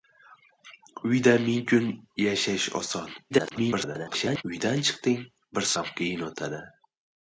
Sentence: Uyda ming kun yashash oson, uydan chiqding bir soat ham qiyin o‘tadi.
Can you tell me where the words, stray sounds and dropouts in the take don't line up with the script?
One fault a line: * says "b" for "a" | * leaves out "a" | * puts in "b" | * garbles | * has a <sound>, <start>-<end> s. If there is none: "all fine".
* garbles
* leaves out "soat"